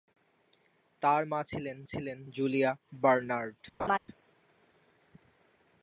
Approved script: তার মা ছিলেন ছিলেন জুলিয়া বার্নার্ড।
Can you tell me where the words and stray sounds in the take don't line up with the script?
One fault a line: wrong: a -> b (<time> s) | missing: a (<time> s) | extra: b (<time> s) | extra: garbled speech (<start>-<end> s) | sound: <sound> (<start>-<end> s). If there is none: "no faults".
sound: laugh (3.8-4.0 s)